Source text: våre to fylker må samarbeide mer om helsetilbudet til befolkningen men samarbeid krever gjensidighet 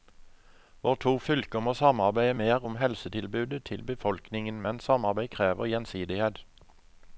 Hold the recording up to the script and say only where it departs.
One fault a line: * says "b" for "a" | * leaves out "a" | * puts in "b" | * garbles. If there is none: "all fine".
all fine